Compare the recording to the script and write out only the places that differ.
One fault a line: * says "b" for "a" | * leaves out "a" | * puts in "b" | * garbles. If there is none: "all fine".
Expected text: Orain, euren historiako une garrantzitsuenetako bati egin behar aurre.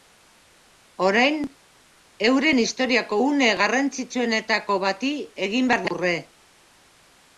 all fine